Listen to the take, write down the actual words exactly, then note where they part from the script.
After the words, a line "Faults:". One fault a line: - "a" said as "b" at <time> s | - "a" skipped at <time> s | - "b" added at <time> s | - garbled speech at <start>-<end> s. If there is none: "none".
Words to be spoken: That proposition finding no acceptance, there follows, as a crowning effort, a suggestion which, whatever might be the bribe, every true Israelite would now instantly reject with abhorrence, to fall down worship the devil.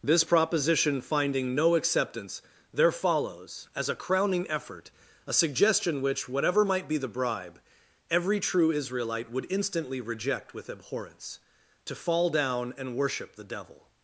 This proposition finding no acceptance, there follows, as a crowning effort, a suggestion which, whatever might be the bribe, every true Israelite would instantly reject with abhorrence, to fall down and worship the devil.
Faults:
- "That" said as "This" at 0.0 s
- "now" skipped at 9.5 s
- "and" added at 12.8 s